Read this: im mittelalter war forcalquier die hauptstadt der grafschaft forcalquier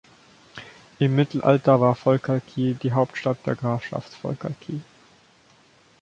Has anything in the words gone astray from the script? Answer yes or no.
no